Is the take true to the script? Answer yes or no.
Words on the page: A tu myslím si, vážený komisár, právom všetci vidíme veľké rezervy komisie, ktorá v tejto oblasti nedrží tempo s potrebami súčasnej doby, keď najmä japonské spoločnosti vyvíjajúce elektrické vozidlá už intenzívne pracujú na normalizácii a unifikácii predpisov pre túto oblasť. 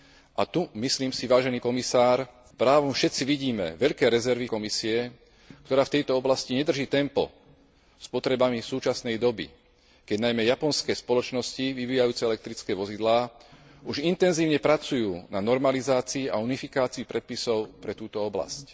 yes